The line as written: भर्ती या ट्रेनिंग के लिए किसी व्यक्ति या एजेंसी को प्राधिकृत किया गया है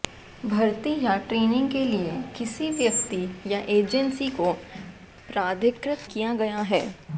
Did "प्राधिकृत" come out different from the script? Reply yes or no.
no